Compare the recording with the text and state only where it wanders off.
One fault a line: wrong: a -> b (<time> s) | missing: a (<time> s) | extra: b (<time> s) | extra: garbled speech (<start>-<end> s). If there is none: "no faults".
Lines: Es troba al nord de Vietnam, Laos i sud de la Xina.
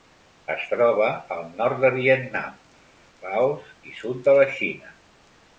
no faults